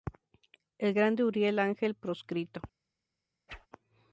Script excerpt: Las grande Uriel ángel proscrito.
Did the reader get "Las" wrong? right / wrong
wrong